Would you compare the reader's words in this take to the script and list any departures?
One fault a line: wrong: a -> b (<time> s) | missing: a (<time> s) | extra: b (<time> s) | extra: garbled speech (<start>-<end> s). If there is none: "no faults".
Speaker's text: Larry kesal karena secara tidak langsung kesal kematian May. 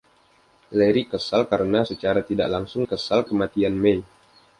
no faults